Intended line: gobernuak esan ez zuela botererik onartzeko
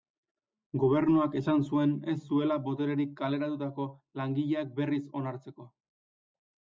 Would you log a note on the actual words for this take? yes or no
yes